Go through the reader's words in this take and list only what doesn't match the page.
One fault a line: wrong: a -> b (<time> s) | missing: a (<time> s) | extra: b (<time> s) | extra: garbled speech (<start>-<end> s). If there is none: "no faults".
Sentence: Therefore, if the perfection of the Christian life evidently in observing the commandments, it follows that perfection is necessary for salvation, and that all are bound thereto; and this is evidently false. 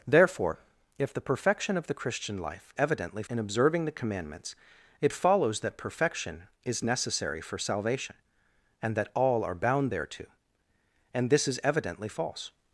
no faults